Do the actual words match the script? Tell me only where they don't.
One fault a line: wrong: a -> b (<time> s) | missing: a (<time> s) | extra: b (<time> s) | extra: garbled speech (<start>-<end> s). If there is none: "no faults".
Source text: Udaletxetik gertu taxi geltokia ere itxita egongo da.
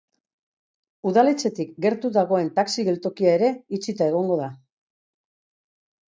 extra: dagoen (2.1 s)